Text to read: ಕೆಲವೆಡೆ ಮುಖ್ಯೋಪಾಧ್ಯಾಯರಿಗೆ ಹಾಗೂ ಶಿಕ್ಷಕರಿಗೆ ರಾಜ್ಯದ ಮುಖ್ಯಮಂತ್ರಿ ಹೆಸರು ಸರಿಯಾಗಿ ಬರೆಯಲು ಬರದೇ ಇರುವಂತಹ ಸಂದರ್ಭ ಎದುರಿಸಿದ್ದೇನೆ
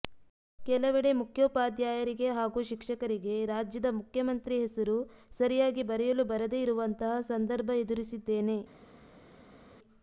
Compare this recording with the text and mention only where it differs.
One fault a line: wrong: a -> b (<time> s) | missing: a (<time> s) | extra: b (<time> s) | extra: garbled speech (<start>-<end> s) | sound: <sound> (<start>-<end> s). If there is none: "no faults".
no faults